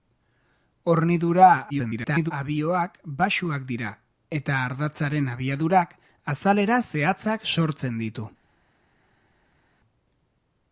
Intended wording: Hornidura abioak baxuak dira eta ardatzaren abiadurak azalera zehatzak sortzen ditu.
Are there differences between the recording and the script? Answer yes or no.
yes